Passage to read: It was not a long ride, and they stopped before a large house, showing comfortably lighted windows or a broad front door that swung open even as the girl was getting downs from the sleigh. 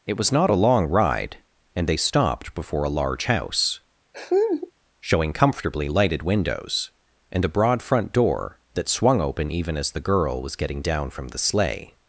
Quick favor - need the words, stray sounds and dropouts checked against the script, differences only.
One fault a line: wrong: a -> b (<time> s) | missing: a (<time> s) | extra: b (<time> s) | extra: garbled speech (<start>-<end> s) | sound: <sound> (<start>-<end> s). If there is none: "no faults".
sound: laugh (4.1-4.7 s)
wrong: or -> and (7.3 s)
wrong: downs -> down (10.8 s)